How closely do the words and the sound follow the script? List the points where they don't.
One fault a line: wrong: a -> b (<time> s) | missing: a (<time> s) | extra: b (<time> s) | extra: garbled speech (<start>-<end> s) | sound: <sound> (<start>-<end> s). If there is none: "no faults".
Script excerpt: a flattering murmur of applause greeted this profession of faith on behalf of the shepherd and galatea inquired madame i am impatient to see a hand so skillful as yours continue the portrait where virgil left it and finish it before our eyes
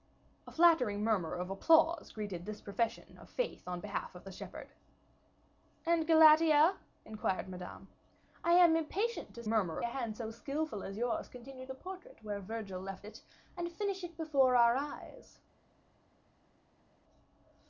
wrong: see -> murmur (9.5 s)